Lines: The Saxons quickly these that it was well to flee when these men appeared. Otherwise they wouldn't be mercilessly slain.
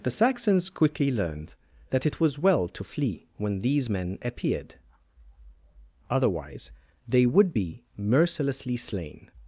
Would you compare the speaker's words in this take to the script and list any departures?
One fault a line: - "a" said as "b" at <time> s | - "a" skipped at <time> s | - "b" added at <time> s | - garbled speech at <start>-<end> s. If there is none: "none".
- "these" said as "learned" at 1.1 s
- "wouldn't" said as "would" at 7.3 s